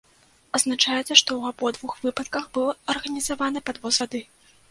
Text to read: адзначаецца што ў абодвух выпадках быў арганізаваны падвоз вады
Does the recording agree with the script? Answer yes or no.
yes